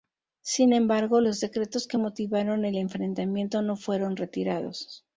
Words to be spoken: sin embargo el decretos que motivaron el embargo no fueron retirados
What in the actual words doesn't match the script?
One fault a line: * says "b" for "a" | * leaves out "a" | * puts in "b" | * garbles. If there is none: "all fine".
* says "los" for "el"
* says "enfrentamiento" for "embargo"